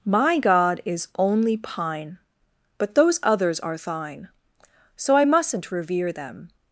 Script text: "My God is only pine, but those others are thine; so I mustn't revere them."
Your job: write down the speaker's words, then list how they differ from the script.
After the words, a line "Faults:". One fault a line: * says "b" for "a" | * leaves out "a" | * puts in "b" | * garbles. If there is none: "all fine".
"My God is only pine, but those others are thine; so I mustn't revere them."
Faults:
all fine